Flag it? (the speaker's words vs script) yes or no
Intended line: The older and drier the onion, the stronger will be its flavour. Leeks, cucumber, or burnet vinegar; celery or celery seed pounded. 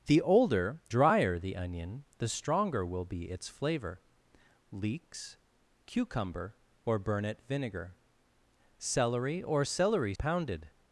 yes